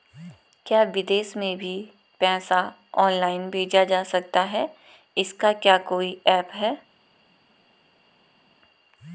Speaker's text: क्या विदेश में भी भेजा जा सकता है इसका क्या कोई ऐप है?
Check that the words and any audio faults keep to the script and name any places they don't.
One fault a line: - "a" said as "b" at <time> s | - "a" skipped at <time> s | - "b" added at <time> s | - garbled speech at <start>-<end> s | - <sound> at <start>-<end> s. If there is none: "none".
- "पैसा ऑनलाइन" added at 2.2 s